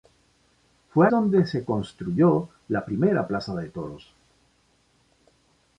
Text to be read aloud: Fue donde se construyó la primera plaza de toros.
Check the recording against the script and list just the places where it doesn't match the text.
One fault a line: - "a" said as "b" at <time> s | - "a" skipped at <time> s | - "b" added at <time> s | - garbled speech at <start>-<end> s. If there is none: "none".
none